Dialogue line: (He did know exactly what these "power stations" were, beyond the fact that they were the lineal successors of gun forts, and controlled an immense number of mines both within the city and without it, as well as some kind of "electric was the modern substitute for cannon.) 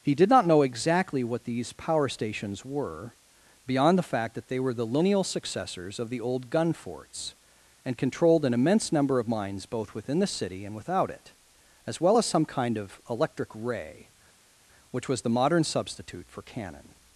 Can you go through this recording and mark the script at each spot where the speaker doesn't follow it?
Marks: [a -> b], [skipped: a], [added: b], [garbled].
(He did [added: not] know exactly what these "power stations" were, beyond the fact that they were the lineal successors of [added: the old] gun forts, and controlled an immense number of mines both within the city and without it, as well as some kind of "electric [added: ray which] was the modern substitute for cannon.)